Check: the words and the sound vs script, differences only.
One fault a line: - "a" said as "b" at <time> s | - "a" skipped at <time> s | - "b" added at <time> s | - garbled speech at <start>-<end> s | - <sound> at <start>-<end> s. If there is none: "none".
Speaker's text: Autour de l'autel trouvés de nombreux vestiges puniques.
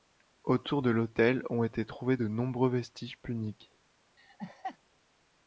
- "ont été" added at 1.5 s
- laugh at 4.2-4.8 s